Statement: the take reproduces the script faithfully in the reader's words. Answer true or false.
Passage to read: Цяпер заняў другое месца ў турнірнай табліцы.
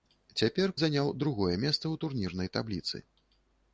true